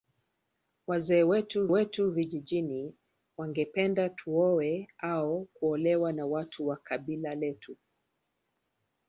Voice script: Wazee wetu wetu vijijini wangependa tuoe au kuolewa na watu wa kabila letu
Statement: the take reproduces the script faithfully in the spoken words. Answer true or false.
true